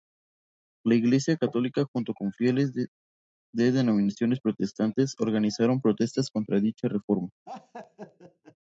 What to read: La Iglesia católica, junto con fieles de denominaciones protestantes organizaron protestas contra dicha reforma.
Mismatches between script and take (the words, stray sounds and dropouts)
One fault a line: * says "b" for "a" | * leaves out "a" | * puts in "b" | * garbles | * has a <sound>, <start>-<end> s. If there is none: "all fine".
* has a laugh, 7.5-8.6 s